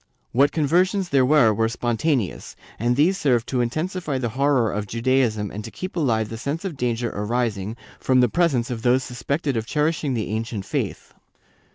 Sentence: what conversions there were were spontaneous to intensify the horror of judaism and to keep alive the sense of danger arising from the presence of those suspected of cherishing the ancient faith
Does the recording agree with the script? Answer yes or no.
no